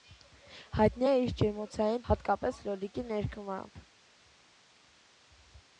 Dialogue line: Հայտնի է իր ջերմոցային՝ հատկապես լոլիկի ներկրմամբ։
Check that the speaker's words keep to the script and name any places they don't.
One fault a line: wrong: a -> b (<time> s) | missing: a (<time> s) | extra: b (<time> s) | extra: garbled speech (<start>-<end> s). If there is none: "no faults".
no faults